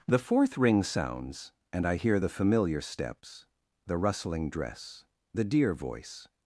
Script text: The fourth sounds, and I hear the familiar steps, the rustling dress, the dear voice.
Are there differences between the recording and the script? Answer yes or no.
yes